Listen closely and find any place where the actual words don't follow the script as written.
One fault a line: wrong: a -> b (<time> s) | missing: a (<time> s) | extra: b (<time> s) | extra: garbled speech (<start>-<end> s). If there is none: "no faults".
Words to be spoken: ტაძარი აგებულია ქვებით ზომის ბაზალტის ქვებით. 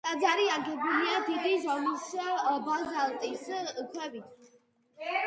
wrong: ქვებით -> დიდი (1.3 s)